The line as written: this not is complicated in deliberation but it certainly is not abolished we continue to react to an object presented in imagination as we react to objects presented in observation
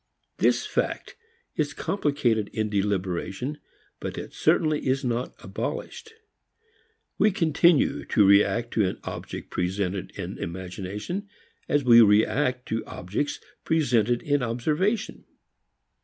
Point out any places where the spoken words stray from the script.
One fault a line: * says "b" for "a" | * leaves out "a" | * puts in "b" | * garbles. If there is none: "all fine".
* says "fact" for "not"